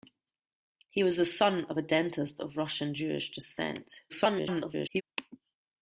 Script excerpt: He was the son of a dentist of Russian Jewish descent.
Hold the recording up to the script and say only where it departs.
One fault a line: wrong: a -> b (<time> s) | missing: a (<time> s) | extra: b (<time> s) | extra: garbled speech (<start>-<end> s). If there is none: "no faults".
extra: garbled speech (4.1-5.0 s)